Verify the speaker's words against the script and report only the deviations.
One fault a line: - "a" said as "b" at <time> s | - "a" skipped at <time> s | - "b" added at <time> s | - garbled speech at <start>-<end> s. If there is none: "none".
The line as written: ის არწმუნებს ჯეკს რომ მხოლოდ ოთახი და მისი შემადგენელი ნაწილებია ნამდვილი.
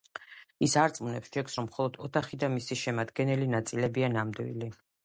none